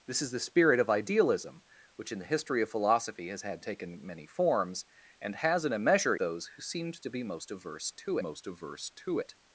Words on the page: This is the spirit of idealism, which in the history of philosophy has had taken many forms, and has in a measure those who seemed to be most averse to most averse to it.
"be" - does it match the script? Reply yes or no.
yes